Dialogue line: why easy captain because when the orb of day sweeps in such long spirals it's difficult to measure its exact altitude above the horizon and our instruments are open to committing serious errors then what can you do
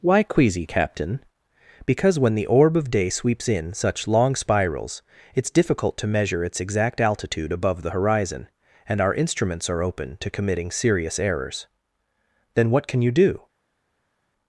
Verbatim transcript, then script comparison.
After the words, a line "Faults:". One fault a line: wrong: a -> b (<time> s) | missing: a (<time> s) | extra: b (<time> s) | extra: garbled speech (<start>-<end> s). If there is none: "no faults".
why queasy captain because when the orb of day sweeps in such long spirals it's difficult to measure its exact altitude above the horizon and our instruments are open to committing serious errors then what can you do
Faults:
wrong: easy -> queasy (0.2 s)